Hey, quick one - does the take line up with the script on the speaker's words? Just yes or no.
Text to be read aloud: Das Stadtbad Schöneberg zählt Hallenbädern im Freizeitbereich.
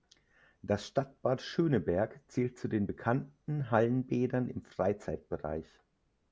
no